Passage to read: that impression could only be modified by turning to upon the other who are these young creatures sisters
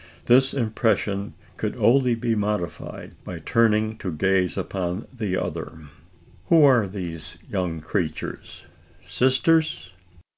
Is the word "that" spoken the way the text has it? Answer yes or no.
no